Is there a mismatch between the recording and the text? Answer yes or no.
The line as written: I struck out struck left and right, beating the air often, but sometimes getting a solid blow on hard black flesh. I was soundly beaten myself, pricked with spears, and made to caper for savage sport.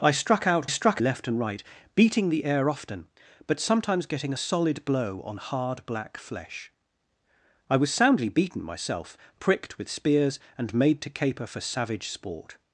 no